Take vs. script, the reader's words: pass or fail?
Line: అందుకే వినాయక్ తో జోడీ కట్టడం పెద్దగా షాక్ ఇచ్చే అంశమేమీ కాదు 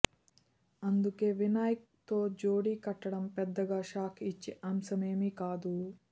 pass